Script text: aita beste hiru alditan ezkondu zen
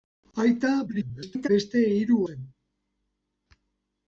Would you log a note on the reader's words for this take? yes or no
yes